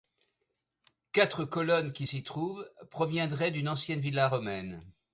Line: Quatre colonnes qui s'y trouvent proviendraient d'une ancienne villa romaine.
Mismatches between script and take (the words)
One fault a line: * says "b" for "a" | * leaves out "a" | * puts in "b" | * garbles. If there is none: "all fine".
all fine